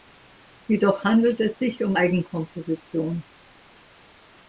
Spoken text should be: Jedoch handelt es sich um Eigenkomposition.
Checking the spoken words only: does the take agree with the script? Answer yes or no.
yes